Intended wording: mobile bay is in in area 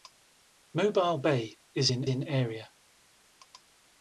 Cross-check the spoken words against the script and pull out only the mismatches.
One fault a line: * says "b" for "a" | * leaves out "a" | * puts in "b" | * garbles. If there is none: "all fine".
all fine